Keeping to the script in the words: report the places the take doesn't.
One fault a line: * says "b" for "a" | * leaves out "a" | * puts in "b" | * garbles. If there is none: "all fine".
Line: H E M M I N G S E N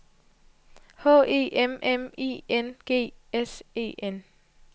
all fine